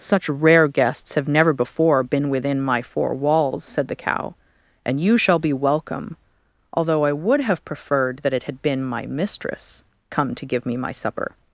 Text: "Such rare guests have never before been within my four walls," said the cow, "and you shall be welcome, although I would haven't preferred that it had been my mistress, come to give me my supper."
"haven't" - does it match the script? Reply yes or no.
no